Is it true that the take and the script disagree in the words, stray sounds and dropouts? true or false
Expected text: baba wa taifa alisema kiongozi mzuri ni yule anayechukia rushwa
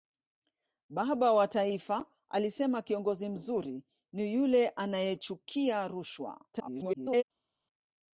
true